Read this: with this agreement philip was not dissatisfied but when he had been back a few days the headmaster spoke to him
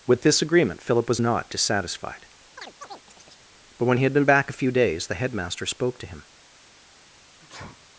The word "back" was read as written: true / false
true